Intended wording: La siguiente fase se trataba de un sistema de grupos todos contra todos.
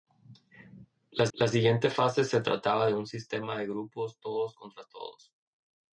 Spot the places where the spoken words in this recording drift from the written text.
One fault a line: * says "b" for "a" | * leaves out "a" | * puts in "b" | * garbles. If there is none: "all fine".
* puts in "la"